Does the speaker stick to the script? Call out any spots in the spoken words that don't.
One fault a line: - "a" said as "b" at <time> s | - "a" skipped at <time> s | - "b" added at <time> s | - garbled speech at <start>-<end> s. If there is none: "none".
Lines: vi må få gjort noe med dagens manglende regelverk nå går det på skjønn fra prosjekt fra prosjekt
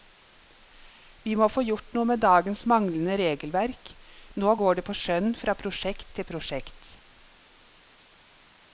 - "fra" said as "til" at 6.2 s